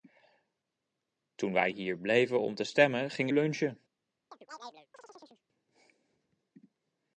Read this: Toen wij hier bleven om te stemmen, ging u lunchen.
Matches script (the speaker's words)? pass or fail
fail